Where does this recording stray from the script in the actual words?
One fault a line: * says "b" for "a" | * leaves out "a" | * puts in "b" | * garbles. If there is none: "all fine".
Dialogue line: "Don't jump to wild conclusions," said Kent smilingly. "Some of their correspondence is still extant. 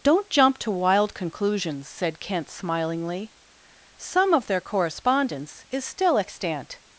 all fine